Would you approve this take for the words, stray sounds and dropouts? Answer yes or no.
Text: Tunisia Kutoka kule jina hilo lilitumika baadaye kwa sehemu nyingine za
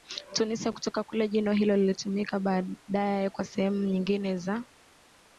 yes